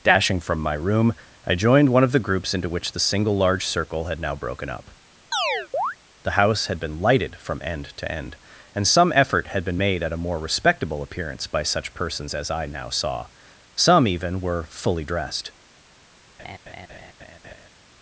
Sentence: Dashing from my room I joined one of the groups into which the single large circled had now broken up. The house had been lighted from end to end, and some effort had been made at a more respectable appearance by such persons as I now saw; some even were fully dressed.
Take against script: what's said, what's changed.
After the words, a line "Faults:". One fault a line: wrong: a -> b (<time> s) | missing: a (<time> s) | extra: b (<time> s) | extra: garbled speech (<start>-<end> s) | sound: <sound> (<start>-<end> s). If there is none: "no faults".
Dashing from my room I joined one of the groups into which the single large circle had now broken up. The house had been lighted from end to end, and some effort had been made at a more respectable appearance by such persons as I now saw; some even were fully dressed.
Faults:
wrong: circled -> circle (3.6 s)
sound: chirp (5.3-6.0 s)
sound: laugh (16.4-17.7 s)